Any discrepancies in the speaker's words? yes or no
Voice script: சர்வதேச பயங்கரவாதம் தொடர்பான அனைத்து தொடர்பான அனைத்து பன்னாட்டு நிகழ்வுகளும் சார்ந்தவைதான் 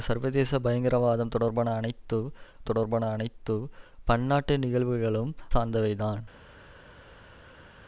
no